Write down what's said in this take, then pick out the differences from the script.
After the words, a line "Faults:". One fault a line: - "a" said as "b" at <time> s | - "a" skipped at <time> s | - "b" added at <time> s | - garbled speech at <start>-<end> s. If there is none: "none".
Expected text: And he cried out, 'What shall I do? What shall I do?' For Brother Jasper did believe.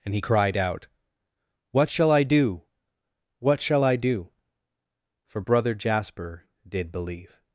And he cried out, 'What shall I do? What shall I do?' For Brother Jasper did believe.
Faults:
none